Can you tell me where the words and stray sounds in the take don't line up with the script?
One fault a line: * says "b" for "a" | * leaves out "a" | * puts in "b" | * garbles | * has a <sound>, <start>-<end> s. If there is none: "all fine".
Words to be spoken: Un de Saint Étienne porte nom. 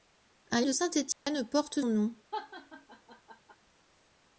* has a dropout, 1.1-1.3 s
* has a laugh, 2.3-3.6 s